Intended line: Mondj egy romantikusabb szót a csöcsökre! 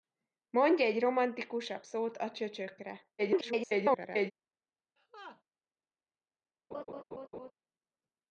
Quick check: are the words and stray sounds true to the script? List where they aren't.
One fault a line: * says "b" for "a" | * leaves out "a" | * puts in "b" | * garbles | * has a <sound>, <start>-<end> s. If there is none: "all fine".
* garbles
* has a laugh, 5.0-5.4 s
* has a laugh, 6.7-7.5 s